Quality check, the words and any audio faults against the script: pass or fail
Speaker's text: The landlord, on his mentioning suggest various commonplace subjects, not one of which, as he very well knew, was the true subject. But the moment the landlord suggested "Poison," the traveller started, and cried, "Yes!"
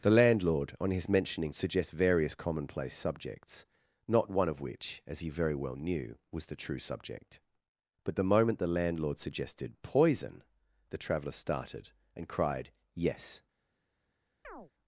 fail